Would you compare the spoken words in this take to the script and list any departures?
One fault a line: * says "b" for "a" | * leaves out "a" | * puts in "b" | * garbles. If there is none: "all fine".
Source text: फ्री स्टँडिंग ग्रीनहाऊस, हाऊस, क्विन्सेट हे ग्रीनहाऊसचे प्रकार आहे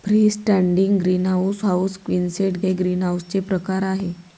all fine